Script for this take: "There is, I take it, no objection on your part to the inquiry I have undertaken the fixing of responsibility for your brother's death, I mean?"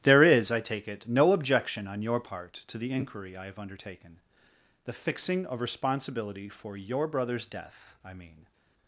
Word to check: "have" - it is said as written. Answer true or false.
true